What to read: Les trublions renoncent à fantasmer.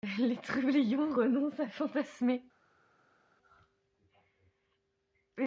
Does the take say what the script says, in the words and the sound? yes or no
yes